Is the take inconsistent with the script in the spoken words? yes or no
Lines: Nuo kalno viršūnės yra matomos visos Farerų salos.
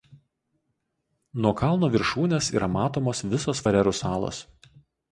no